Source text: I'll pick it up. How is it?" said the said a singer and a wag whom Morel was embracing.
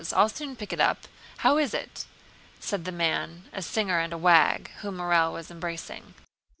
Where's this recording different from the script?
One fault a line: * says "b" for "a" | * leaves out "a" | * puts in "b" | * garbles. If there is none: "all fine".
* puts in "soon"
* says "man" for "said"